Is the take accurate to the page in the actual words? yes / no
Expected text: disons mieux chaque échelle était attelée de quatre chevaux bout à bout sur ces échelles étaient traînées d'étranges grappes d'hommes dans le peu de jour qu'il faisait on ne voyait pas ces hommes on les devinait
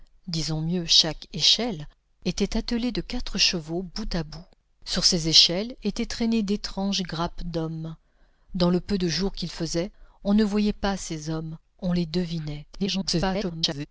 no